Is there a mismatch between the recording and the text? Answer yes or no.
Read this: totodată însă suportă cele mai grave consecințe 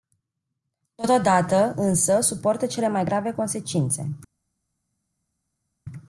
no